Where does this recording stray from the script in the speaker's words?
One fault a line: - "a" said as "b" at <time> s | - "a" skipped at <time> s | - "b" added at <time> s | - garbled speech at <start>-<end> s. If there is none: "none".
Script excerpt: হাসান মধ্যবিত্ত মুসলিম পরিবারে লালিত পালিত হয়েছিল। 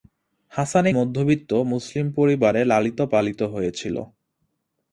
none